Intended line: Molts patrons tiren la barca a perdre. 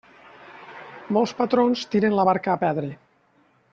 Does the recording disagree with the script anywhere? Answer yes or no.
no